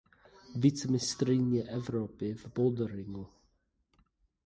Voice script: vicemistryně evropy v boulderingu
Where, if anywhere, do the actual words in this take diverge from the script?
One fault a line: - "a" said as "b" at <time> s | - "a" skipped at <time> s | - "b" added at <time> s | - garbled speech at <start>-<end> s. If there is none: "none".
none